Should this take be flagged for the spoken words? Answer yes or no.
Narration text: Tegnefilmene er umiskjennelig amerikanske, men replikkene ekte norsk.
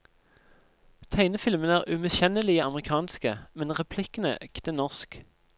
no